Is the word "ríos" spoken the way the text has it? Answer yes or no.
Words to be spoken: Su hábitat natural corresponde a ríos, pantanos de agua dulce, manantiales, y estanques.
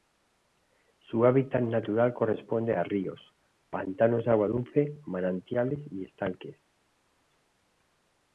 yes